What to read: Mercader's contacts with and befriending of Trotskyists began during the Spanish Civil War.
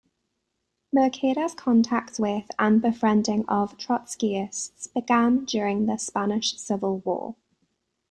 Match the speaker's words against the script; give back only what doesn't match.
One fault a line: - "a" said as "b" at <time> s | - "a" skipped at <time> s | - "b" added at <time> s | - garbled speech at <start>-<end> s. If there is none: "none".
none